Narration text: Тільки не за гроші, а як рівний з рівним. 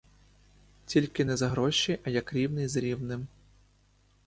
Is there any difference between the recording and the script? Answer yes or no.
no